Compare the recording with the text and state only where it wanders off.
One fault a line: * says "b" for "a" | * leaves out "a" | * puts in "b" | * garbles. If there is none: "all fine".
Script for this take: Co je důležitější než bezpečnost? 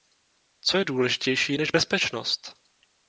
all fine